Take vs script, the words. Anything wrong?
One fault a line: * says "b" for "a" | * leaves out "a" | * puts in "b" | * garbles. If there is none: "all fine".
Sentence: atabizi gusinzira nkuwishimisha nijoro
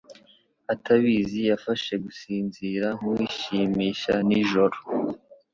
* puts in "yafashe"